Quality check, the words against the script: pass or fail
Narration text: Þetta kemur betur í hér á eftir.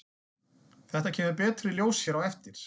fail